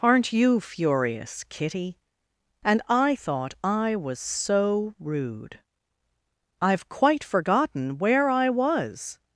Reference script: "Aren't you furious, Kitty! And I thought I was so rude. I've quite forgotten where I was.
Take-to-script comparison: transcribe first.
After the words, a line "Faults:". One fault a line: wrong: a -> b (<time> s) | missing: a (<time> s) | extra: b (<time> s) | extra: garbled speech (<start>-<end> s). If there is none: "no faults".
"Aren't you furious, Kitty! And I thought I was so rude. I've quite forgotten where I was.
Faults:
no faults